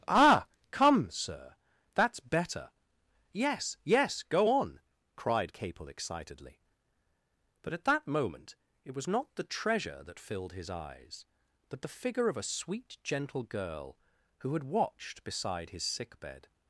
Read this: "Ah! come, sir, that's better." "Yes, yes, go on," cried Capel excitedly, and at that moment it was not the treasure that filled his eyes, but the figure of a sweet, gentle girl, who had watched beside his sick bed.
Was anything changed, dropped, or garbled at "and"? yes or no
yes